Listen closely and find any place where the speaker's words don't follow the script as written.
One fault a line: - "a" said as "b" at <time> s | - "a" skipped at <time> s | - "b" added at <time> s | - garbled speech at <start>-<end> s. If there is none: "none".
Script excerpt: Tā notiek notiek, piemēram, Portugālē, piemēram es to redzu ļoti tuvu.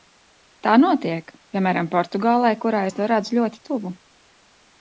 - "notiek" skipped at 1.3 s
- "piemēram" said as "kurā" at 2.6 s